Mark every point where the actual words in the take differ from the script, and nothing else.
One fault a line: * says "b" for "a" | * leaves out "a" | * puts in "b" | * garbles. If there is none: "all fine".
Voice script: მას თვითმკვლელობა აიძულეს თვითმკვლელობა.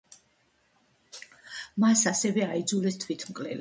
* says "ასევე" for "თვითმკვლელობა"